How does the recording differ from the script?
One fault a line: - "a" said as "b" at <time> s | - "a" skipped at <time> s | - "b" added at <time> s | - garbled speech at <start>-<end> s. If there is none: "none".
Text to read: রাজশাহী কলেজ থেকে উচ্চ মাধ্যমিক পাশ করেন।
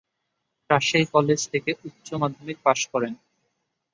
none